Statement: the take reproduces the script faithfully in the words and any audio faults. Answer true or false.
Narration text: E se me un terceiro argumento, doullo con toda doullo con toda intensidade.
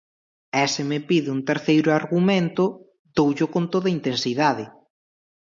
false